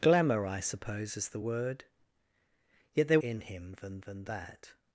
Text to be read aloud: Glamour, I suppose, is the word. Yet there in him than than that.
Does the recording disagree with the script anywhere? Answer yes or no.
no